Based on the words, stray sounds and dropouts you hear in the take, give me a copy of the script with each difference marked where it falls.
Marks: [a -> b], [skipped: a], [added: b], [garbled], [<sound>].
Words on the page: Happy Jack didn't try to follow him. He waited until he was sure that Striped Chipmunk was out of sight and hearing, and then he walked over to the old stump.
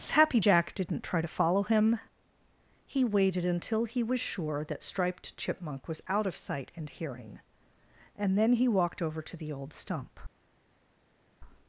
Happy Jack didn't try to follow him. He waited until he was sure that Striped Chipmunk was out of sight and hearing, and then he walked over to the old stump.